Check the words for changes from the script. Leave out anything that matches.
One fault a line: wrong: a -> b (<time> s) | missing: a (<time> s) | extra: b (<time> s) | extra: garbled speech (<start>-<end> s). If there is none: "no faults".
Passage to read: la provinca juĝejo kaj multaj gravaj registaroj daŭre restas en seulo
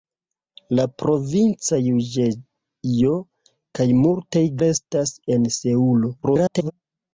missing: gravaj registaroj daŭre (4.5 s)
extra: garbled speech (6.2-6.7 s)